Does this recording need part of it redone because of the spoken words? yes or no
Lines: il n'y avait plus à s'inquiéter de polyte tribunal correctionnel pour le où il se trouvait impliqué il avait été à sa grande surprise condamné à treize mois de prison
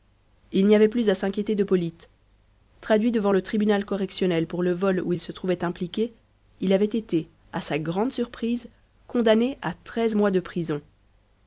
yes